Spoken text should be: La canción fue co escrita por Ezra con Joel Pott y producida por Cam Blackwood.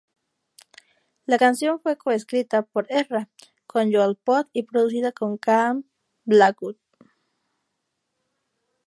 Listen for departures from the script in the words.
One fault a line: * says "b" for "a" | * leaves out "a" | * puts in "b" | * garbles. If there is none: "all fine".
all fine